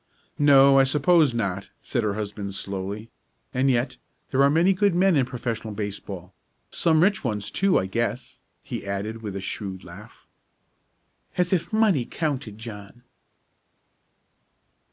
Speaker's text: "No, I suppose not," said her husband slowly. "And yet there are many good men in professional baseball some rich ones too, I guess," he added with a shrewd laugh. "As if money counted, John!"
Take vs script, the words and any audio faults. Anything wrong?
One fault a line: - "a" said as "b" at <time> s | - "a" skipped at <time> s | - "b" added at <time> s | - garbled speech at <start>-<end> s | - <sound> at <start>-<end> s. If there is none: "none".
none